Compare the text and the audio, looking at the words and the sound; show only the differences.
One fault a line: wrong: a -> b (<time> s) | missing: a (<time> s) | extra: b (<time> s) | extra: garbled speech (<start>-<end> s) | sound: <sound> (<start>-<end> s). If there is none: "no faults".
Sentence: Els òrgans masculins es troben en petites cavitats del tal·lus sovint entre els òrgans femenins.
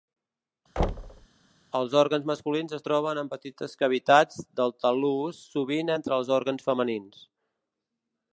sound: thud (0.8-1.3 s)